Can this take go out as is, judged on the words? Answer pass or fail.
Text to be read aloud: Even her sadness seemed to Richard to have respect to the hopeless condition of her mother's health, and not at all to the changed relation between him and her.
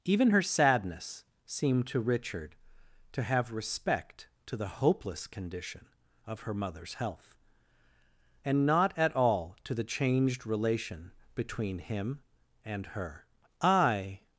fail